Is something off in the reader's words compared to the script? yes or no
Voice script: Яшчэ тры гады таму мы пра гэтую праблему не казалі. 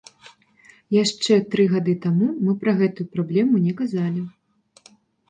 no